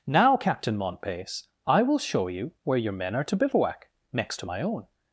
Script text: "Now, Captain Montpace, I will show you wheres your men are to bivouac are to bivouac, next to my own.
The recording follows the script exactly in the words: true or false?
false